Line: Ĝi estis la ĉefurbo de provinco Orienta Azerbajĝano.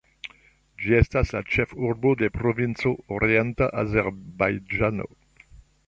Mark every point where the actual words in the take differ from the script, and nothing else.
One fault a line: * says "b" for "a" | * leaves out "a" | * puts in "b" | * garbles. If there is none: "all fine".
* says "estas" for "estis"